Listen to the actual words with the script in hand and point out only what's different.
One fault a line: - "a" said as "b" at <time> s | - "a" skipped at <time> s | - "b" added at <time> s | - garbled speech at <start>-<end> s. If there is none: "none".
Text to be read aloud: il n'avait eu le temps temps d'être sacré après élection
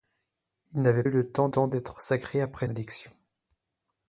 none